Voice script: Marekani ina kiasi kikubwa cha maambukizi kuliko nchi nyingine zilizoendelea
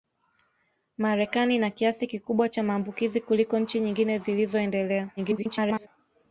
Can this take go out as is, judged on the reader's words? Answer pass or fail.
fail